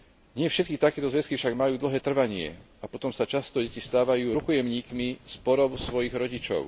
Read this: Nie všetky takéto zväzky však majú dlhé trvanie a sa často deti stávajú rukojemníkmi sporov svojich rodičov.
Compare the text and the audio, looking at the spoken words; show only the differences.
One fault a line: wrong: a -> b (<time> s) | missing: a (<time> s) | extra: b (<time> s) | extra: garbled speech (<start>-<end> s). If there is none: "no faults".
extra: potom (2.9 s)